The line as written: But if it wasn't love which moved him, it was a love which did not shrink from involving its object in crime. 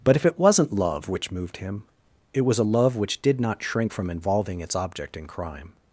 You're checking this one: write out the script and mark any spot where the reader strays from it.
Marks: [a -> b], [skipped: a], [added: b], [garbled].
But if it wasn't love which moved him, it was a love which did not shrink from involving its object in crime.